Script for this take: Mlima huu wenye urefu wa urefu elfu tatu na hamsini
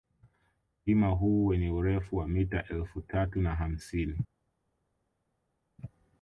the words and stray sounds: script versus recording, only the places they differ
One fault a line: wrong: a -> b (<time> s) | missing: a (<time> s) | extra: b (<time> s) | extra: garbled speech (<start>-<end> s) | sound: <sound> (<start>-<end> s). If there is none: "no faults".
wrong: urefu -> mita (2.3 s)